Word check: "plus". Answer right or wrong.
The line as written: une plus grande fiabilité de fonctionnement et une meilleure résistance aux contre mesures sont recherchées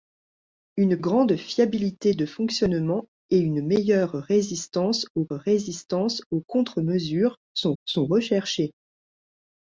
wrong